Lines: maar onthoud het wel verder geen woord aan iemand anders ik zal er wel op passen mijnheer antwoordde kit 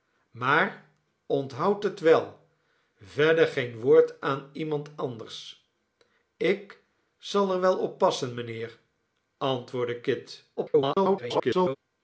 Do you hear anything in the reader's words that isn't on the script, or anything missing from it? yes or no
yes